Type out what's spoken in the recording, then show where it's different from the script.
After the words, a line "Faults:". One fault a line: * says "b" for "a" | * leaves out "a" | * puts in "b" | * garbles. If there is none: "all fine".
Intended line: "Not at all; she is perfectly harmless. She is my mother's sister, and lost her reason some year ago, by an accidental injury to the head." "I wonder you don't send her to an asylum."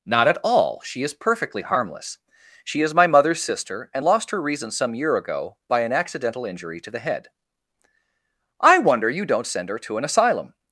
"Not at all; she is perfectly harmless. She is my mother's sister, and lost her reason some year ago, by an accidental injury to the head." "I wonder you don't send her to an asylum."
Faults:
all fine